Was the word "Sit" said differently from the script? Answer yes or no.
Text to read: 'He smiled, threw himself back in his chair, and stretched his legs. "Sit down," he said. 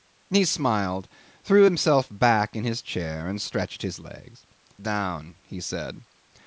yes